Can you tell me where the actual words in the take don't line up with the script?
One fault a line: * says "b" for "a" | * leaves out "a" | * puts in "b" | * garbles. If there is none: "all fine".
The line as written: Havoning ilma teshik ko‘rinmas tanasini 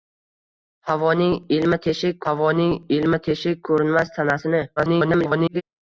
* puts in "havoning ilma teshik"
* garbles